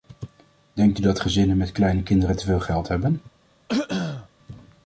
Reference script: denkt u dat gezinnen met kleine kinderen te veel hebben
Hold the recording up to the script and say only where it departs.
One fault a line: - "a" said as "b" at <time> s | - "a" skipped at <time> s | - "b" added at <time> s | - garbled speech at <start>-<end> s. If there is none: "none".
- "geld" added at 2.6 s